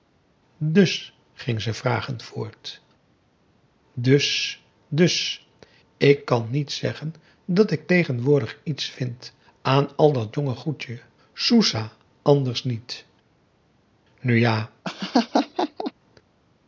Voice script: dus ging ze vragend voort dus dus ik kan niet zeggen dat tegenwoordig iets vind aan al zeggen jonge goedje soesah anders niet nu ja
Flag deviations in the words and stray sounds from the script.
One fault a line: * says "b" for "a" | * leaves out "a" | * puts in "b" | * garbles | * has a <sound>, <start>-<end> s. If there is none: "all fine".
* puts in "ik"
* says "dat" for "zeggen"
* has a laugh, 14.8-15.9 s